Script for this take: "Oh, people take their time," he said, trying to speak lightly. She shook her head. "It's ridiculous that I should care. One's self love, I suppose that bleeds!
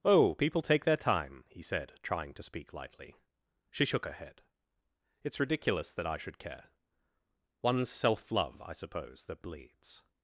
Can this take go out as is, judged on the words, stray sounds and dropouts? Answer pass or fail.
pass